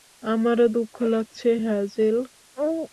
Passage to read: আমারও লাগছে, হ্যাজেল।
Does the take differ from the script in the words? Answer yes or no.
yes